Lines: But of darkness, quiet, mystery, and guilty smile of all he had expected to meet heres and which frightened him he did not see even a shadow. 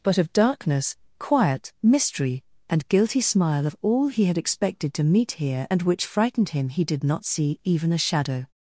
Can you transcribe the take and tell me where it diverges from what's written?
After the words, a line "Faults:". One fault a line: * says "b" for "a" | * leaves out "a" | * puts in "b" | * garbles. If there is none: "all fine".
But of darkness, quiet, mystery, and guilty smile of all he had expected to meet here and which frightened him he did not see even a shadow.
Faults:
* says "here" for "heres"